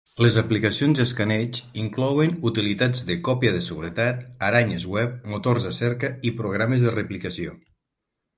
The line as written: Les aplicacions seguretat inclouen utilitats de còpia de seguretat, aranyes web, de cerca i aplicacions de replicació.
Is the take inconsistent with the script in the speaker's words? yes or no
yes